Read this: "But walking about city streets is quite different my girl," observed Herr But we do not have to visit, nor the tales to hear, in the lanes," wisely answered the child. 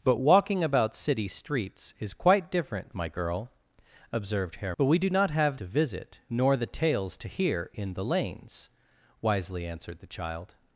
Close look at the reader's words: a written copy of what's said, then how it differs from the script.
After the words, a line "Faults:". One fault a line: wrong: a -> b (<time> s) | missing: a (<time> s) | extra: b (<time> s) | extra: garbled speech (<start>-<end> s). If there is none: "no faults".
"But walking about city streets is quite different my girl," observed Herr But we do not have to visit, nor the tales to hear, in the lanes," wisely answered the child.
Faults:
no faults